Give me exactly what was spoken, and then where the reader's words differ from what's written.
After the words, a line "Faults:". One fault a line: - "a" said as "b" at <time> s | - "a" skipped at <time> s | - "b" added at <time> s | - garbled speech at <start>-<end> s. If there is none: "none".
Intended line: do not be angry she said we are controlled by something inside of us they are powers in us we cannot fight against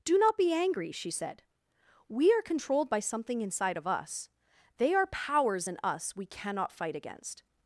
do not be angry she said we are controlled by something inside of us they are powers in us we cannot fight against
Faults:
none